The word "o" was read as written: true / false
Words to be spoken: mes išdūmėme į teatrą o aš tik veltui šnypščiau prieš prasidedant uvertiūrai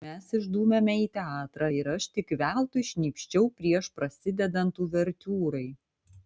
false